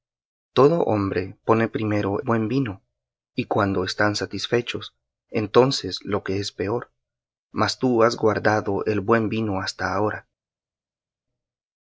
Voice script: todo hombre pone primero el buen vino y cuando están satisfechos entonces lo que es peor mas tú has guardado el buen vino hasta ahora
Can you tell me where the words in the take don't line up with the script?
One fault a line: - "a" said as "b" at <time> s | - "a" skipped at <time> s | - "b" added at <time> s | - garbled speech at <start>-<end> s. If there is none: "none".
- "el" skipped at 2.2 s